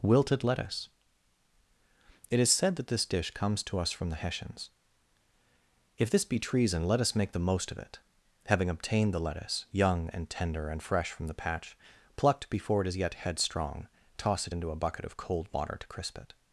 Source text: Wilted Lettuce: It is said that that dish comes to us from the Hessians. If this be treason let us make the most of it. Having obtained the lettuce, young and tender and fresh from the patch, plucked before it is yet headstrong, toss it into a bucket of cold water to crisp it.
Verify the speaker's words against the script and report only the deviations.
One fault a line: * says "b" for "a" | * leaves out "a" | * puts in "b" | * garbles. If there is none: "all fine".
* says "this" for "that"